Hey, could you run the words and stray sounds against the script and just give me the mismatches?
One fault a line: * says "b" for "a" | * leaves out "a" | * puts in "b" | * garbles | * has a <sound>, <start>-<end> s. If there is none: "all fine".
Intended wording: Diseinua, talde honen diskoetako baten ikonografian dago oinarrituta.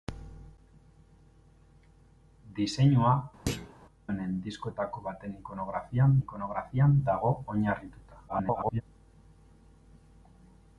* leaves out "talde"
* has a thud, 3.5-3.7 s
* puts in "ikonografian"
* garbles